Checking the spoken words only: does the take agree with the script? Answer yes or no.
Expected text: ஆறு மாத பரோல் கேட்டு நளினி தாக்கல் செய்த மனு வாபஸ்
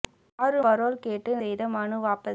no